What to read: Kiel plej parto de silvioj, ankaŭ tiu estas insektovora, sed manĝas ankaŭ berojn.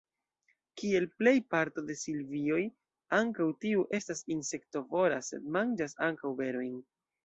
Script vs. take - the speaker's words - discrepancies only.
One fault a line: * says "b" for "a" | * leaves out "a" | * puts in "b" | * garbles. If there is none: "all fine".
all fine